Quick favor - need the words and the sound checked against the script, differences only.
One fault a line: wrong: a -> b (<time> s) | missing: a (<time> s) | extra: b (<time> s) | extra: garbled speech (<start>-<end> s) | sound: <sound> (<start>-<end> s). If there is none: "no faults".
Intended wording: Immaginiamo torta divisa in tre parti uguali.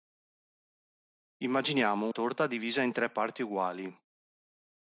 no faults